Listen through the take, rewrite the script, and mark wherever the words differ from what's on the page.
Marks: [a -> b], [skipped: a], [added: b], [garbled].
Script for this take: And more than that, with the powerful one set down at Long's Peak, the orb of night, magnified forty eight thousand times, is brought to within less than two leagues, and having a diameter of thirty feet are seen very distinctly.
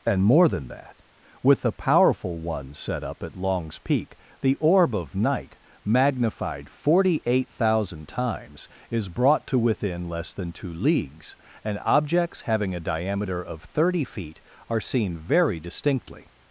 And more than that, with the powerful one set [down -> up] at Long's Peak, the orb of night, magnified forty eight thousand times, is brought to within less than two leagues, and [added: objects] having a diameter of thirty feet are seen very distinctly.